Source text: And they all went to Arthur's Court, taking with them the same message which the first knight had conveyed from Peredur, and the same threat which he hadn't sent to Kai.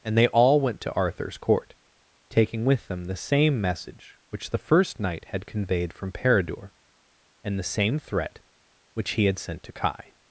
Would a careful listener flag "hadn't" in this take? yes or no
yes